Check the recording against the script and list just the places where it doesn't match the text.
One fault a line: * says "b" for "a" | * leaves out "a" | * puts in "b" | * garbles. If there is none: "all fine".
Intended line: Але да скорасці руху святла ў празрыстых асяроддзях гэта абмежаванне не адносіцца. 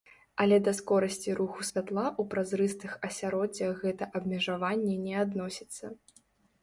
all fine